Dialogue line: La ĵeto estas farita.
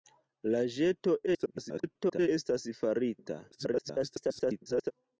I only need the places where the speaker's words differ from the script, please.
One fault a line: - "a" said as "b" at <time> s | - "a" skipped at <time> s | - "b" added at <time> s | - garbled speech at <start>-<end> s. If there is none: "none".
- garbled speech at 1.3-2.3 s
- garbled speech at 3.5-4.9 s